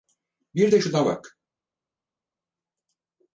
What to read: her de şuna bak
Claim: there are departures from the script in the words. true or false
true